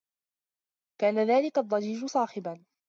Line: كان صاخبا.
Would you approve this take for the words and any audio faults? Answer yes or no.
no